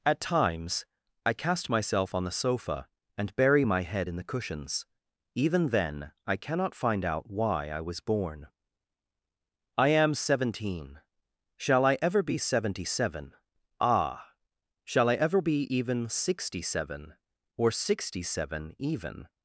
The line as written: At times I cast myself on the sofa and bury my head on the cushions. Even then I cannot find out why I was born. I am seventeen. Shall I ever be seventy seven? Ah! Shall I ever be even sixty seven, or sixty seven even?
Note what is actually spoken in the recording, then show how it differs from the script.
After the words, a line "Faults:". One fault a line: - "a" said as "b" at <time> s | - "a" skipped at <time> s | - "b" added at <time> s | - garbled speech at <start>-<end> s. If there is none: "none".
At times I cast myself on the sofa and bury my head in the cushions. Even then I cannot find out why I was born. I am seventeen. Shall I ever be seventy seven? Ah! Shall I ever be even sixty seven, or sixty seven even?
Faults:
- "on" said as "in" at 4.1 s